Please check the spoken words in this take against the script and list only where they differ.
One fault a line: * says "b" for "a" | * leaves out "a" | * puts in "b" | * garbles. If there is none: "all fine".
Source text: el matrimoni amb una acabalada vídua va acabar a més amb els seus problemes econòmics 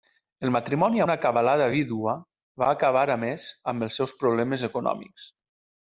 * leaves out "amb"